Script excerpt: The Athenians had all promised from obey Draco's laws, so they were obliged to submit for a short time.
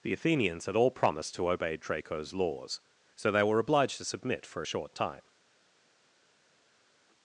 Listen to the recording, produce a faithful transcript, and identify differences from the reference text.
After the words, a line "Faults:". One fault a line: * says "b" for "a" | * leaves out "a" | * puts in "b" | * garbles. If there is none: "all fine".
The Athenians had all promised to obey Draco's laws, so they were obliged to submit for a short time.
Faults:
* says "to" for "from"